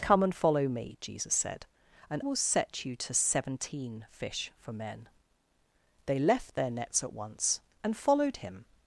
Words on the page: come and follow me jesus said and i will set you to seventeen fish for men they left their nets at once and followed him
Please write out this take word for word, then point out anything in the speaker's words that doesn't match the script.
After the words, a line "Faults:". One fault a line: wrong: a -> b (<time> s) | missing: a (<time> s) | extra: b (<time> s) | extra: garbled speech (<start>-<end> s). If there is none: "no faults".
come and follow me jesus said and will set you to seventeen fish for men they left their nets at once and followed him
Faults:
missing: i (2.2 s)